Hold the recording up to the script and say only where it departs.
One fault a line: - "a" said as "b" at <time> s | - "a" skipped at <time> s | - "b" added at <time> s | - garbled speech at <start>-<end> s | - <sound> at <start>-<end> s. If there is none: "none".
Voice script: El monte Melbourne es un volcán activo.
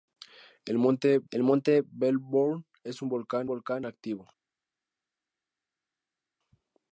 - "el monte" added at 1.3 s
- "volcán" added at 3.5 s